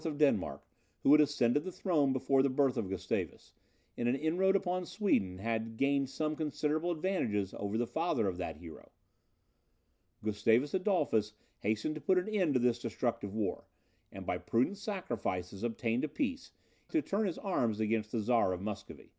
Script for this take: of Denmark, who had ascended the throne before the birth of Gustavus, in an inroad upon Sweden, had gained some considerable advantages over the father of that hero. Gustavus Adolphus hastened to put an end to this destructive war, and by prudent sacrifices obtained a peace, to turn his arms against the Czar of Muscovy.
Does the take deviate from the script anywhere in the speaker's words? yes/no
no